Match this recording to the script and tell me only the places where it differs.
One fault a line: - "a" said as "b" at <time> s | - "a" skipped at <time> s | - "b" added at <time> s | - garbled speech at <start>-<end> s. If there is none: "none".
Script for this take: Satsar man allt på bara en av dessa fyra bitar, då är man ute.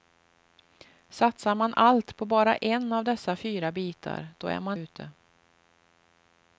none